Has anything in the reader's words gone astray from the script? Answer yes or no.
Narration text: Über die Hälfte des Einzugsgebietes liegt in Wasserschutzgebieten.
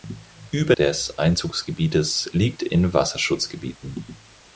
yes